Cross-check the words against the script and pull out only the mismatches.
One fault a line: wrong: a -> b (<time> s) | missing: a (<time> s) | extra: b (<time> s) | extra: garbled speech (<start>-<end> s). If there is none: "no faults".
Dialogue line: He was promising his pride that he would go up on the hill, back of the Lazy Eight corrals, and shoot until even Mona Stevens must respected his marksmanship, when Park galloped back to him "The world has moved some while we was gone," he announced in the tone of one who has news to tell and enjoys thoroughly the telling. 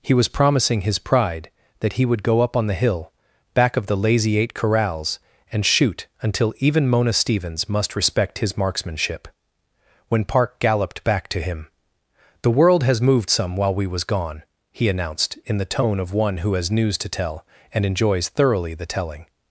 wrong: respected -> respect (8.0 s)